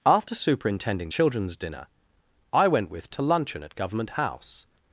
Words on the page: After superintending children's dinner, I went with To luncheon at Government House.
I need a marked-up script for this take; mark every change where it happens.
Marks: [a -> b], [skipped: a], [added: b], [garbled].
After superintending children's dinner, I went with To luncheon at Government House.